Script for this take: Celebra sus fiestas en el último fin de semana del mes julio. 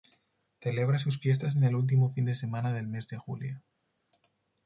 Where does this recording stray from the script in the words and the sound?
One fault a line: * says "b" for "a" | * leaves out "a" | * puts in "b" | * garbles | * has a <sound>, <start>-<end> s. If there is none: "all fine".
* puts in "de"